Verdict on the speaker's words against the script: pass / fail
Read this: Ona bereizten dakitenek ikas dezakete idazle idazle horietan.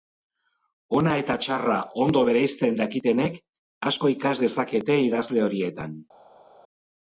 fail